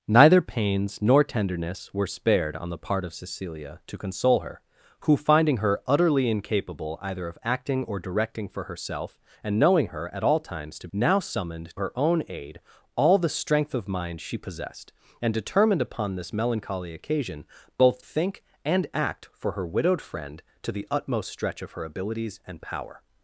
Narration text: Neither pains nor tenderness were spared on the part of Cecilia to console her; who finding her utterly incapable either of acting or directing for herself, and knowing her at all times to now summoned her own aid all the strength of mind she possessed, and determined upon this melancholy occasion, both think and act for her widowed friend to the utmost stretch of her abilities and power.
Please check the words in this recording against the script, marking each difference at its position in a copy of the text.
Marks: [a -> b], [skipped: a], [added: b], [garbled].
Neither pains nor tenderness were spared on the part of Cecilia to console her; who finding her utterly incapable either of acting or directing for herself, and knowing her at all times to now summoned her own aid all the strength of mind she possessed, and determined upon this melancholy occasion, both think and act for her widowed friend to the utmost stretch of her abilities and power.